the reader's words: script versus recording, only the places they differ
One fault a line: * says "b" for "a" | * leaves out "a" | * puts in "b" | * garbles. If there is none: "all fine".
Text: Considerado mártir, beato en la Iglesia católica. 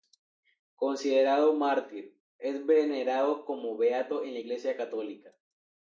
* puts in "es venerado como"